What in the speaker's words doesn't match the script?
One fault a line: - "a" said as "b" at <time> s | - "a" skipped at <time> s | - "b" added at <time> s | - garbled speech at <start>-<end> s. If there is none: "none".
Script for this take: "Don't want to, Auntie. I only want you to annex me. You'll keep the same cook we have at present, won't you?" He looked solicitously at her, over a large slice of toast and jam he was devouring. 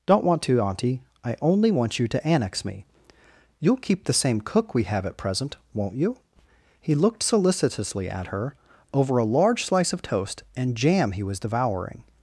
none